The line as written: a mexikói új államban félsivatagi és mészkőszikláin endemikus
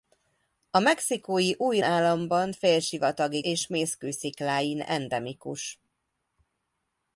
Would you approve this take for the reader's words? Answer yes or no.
yes